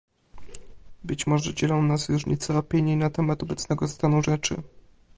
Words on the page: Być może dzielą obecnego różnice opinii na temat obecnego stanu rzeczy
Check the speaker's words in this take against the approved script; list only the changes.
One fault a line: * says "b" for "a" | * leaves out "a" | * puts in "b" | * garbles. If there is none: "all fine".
* says "nas" for "obecnego"